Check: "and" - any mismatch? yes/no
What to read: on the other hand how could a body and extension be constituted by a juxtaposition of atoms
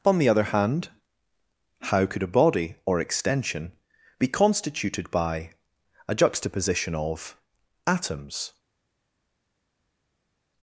yes